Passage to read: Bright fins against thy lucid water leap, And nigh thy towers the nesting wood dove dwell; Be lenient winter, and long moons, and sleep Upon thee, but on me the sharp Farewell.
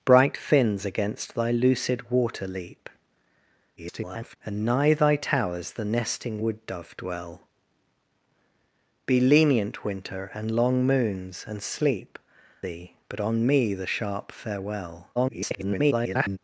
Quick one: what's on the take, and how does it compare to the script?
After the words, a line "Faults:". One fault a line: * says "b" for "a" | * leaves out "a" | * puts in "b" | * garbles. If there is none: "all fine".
Bright fins against thy lucid water leap, [garbled] And nigh thy towers the nesting wood dove dwell; Be lenient winter, and long moons, and sleep Thee, but on me the sharp Farewell. [garbled]
Faults:
* garbles
* leaves out "Upon"
* garbles